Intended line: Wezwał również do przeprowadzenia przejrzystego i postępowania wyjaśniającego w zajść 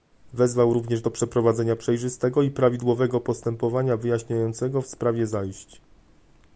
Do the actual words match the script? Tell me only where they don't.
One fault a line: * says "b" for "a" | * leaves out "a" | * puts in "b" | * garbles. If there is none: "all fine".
* puts in "prawidłowego"
* puts in "sprawie"